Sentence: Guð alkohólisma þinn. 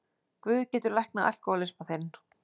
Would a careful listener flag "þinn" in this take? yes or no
no